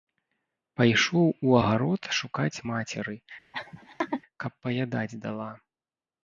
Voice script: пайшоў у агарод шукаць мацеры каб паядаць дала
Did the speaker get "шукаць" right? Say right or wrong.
right